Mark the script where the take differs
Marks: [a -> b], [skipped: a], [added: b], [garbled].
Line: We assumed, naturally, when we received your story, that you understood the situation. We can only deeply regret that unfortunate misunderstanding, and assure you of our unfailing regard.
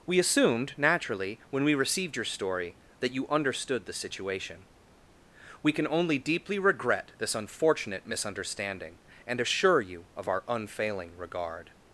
We assumed, naturally, when we received your story, that you understood the situation. We can only deeply regret [that -> this] unfortunate misunderstanding, and assure you of our unfailing regard.